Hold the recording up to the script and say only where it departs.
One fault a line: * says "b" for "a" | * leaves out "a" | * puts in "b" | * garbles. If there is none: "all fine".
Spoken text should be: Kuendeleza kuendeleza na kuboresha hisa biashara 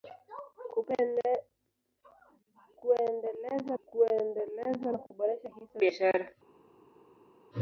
all fine